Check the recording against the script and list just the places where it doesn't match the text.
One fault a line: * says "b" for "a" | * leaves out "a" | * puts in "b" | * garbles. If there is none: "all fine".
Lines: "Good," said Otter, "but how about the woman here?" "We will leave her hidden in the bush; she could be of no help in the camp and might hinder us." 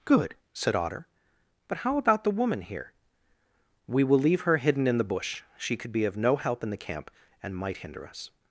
all fine